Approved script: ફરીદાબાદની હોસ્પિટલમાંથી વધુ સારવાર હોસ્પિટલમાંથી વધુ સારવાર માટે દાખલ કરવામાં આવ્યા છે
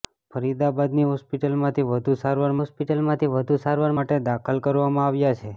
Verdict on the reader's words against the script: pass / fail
pass